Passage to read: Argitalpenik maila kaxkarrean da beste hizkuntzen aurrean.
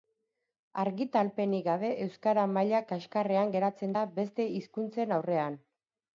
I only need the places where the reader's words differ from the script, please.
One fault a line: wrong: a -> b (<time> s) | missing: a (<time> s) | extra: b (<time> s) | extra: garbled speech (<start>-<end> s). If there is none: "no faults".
extra: gabe euskara (1.7 s)
extra: geratzen (3.6 s)